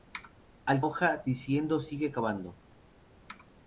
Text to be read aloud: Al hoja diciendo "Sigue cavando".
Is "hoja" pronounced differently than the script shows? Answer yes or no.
no